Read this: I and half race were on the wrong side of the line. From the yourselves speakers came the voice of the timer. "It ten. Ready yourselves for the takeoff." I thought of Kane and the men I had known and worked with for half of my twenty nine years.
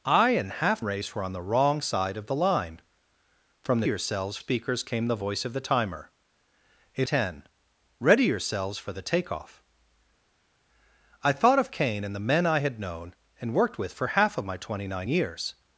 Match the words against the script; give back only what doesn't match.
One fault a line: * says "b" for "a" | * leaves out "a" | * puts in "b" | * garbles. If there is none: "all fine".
all fine